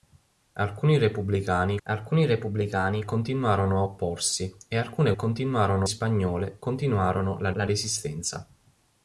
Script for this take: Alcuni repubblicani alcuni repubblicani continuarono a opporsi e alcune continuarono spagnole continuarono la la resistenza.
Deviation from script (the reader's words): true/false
false